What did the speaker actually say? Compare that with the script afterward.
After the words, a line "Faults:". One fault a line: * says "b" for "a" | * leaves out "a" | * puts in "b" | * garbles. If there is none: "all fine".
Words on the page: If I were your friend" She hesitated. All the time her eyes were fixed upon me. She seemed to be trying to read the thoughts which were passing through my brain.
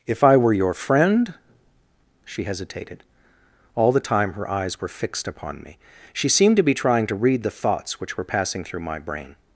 If I were your friend" She hesitated. All the time her eyes were fixed upon me. She seemed to be trying to read the thoughts which were passing through my brain.
Faults:
all fine